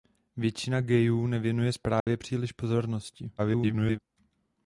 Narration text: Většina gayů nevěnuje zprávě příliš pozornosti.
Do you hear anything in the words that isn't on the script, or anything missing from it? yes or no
yes